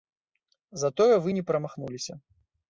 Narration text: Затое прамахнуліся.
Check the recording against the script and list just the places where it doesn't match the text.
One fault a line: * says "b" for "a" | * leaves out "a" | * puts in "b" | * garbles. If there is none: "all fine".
* puts in "вы не"